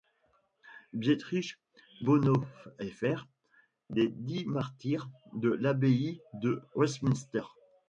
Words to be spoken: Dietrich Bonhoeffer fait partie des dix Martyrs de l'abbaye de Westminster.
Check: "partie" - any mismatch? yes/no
yes